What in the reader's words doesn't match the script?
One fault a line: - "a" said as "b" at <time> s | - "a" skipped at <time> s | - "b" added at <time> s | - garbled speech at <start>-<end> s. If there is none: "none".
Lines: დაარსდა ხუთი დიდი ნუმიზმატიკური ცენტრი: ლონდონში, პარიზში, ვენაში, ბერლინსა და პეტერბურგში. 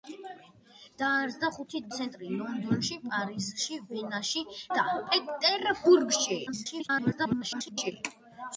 - "დიდი ნუმიზმატიკური" skipped at 1.8 s
- "ბერლინსა" skipped at 4.5 s
- garbled speech at 6.5-7.9 s